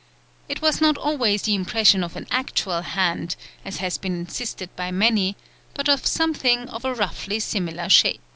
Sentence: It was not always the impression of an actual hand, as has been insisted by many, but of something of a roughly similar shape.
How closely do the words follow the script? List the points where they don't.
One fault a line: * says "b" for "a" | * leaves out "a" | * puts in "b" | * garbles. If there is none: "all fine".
all fine